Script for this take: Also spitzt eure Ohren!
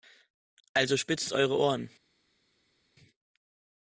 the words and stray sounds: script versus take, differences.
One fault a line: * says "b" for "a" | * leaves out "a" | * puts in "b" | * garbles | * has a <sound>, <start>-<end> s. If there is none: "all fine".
all fine